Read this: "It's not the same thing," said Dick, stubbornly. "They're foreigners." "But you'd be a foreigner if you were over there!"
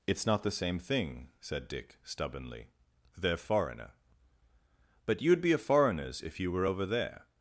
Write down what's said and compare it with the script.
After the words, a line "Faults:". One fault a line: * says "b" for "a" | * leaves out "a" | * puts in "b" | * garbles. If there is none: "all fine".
"It's not the same thing," said Dick, stubbornly. "They're foreigner." "But you'd be a foreigners if you were over there!"
Faults:
* says "foreigner" for "foreigners"
* says "foreigners" for "foreigner"